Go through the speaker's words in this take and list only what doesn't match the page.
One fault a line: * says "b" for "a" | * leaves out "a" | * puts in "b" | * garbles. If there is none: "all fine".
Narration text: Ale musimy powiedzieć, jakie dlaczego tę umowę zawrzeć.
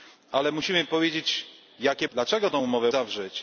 all fine